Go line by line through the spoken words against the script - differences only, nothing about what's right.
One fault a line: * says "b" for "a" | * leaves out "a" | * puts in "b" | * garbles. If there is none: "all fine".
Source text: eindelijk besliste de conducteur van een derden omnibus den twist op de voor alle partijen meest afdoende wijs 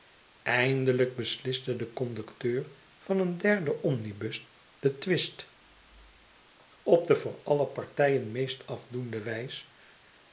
all fine